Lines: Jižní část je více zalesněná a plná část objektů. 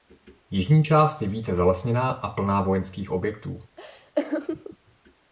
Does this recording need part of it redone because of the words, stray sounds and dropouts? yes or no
yes